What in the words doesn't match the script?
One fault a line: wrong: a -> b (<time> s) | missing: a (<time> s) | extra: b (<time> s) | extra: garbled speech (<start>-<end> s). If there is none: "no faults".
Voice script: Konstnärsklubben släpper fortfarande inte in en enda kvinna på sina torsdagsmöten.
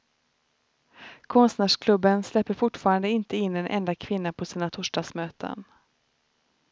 no faults